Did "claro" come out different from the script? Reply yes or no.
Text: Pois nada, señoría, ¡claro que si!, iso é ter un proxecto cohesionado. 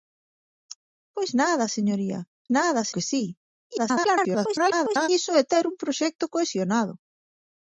yes